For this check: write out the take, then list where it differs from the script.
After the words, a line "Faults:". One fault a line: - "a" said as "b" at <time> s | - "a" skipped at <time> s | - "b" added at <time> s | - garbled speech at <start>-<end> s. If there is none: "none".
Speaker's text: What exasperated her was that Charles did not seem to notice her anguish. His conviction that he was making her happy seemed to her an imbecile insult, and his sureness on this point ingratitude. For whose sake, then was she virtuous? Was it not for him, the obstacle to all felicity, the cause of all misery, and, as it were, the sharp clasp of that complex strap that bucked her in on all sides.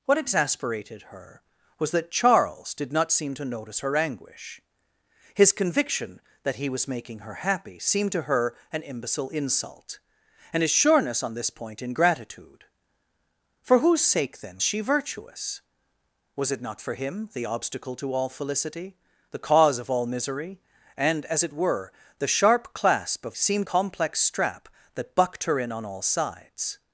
What exasperated her was that Charles did not seem to notice her anguish. His conviction that he was making her happy seemed to her an imbecile insult, and his sureness on this point ingratitude. For whose sake, then she virtuous? Was it not for him, the obstacle to all felicity, the cause of all misery, and, as it were, the sharp clasp of seemed complex strap that bucked her in on all sides.
Faults:
- "was" skipped at 14.6 s
- "that" said as "seemed" at 23.3 s